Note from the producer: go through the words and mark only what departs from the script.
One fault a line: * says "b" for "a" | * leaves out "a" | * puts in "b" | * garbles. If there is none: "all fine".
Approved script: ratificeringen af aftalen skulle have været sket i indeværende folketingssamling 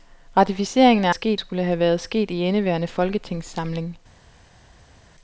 * says "sket" for "aftalen"